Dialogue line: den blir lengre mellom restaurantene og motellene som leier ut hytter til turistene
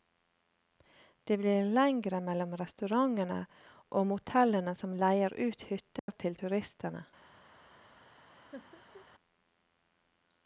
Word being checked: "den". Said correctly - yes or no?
no